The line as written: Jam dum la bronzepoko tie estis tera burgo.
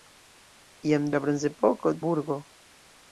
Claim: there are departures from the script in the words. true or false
true